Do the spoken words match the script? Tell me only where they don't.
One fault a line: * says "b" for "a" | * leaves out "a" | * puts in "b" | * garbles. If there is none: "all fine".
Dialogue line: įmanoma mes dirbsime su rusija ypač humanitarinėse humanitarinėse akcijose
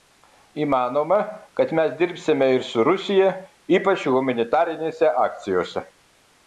* puts in "kad"
* puts in "ir"
* leaves out "humanitarinėse"